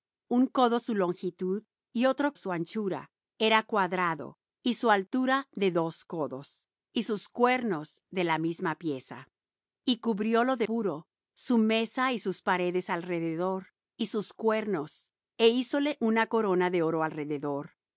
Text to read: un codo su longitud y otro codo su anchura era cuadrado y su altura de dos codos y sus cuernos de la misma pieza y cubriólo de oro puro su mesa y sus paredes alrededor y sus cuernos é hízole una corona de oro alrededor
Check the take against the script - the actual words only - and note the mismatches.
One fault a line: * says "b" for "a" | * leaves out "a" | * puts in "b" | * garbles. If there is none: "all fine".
* leaves out "codo"
* leaves out "oro"